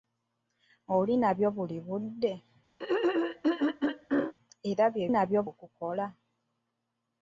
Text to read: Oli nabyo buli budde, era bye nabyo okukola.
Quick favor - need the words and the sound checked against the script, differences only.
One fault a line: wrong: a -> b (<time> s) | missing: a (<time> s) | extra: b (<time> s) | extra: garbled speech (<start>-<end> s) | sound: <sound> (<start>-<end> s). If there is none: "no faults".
sound: throat clearing (2.8-4.3 s)